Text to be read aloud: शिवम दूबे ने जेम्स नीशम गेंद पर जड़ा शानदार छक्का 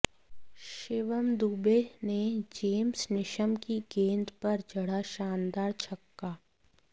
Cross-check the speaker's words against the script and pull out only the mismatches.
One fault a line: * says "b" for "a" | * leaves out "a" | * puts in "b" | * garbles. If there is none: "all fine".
* puts in "की"